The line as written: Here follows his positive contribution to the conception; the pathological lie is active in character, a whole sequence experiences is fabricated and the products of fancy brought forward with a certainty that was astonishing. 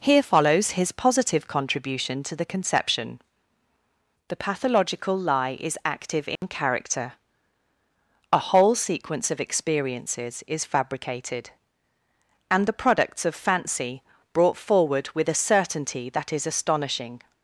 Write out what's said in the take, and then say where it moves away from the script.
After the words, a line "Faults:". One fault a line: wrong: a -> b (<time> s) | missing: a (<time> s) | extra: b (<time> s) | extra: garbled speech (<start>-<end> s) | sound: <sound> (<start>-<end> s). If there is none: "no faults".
Here follows his positive contribution to the conception; the pathological lie is active in character, a whole sequence of experiences is fabricated and the products of fancy brought forward with a certainty that is astonishing.
Faults:
sound: dropout (6.4-6.4 s)
extra: of (9.3 s)
wrong: was -> is (16.3 s)